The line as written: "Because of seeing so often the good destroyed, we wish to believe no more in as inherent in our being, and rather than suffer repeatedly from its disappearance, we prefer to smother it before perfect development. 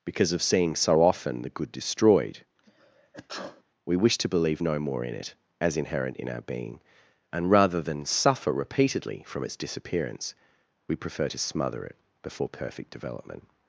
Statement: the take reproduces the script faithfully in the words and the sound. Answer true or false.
false